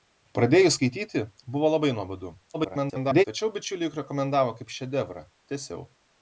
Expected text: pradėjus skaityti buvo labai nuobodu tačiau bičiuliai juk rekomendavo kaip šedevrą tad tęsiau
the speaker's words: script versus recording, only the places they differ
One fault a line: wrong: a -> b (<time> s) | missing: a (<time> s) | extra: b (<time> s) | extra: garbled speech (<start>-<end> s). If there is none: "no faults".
extra: garbled speech (2.5-3.2 s)
missing: tad (5.2 s)